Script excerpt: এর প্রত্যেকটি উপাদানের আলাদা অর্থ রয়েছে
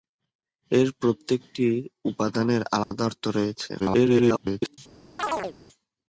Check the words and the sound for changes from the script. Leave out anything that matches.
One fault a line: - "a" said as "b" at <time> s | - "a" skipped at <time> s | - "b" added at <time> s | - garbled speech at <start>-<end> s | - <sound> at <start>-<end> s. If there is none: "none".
- dropout at 2.8-2.9 s
- garbled speech at 3.8-4.8 s
- chirp at 5.2-5.6 s